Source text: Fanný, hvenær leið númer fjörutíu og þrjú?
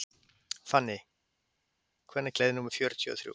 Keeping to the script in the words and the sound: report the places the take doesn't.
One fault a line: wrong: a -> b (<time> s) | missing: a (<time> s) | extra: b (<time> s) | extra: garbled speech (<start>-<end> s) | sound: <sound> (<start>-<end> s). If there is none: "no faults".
no faults